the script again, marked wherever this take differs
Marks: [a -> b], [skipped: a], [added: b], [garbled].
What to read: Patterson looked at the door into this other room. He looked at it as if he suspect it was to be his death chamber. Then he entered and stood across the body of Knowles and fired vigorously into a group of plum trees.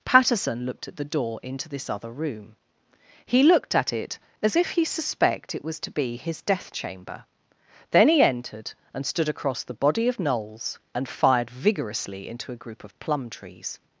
Patterson looked at the door into this other room. He looked at it as if he suspect it was to be his death chamber. Then he entered and stood across the body of Knowles and fired vigorously into a group of plum trees.